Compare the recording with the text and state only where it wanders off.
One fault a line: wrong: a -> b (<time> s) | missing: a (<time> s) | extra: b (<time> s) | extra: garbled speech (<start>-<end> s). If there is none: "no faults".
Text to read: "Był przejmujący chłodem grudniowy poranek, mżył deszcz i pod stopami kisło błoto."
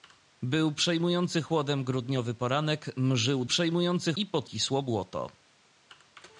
wrong: deszcz -> przejmujący (3.4 s)
missing: stopami (4.5 s)